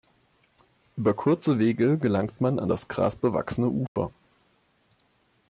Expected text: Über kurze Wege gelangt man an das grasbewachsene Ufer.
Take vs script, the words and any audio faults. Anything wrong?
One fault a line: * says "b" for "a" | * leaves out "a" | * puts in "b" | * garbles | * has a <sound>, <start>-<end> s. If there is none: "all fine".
* has a dropout, 3.9-4.0 s